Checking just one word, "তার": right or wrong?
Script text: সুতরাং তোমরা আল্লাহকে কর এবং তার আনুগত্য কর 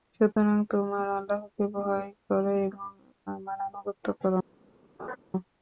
wrong